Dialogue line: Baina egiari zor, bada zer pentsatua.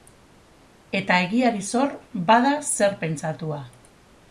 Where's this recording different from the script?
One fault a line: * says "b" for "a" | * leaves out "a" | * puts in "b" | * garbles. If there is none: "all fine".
* says "Eta" for "Baina"